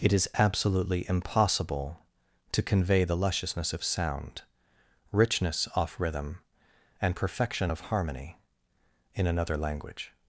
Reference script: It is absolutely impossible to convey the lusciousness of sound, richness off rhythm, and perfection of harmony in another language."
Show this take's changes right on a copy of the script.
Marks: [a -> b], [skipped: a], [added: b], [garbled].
It is absolutely impossible to convey the lusciousness of sound, richness off rhythm, and perfection of harmony in another language."